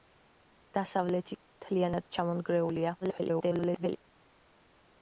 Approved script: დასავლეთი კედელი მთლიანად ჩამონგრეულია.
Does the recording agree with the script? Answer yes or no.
no